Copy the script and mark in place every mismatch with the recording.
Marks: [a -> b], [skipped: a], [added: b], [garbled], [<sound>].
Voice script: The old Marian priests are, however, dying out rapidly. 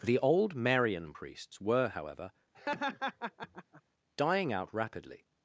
The old Marian priests [are, -> were] however, [laugh] dying out rapidly.